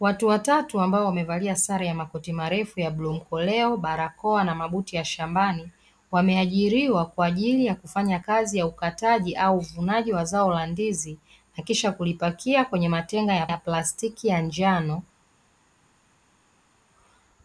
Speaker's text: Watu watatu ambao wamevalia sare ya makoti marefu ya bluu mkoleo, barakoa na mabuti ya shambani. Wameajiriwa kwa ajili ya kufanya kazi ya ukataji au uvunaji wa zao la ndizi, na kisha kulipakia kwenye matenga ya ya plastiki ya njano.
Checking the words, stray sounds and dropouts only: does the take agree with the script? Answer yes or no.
yes